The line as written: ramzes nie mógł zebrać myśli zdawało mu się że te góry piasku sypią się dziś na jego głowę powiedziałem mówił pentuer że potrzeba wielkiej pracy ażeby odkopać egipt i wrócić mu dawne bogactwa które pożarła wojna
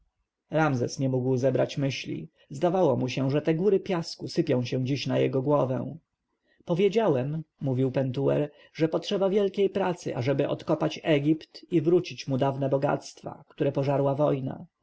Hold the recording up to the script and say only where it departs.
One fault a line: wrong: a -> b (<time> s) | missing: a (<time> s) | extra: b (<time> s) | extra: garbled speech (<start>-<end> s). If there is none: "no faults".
no faults